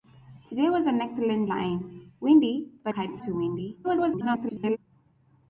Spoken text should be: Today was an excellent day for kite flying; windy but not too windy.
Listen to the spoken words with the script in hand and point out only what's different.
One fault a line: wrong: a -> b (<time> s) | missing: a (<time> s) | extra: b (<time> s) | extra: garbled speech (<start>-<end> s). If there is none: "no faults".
missing: day for kite (1.4 s)
wrong: not -> kite (2.9 s)
extra: garbled speech (3.8-4.8 s)